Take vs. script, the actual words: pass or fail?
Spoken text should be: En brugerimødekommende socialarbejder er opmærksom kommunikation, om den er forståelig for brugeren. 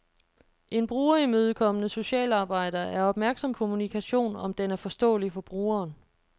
pass